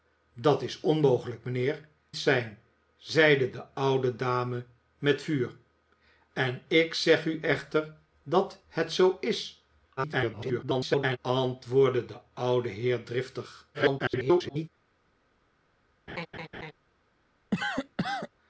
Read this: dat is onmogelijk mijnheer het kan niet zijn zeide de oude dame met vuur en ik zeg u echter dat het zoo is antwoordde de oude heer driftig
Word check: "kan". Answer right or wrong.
wrong